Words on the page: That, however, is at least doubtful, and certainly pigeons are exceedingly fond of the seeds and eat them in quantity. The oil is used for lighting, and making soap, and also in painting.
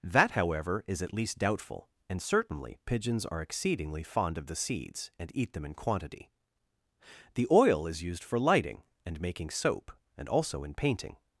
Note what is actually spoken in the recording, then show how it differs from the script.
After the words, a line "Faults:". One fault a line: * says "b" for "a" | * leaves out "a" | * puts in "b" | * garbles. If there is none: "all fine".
That, however, is at least doubtful, and certainly pigeons are exceedingly fond of the seeds and eat them in quantity. The oil is used for lighting, and making soap, and also in painting.
Faults:
all fine